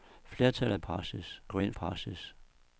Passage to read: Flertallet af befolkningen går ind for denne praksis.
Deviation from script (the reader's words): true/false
true